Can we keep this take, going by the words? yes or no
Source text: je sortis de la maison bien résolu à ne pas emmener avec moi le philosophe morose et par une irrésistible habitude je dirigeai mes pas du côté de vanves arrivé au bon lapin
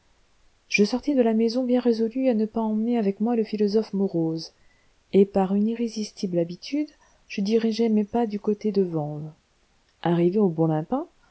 yes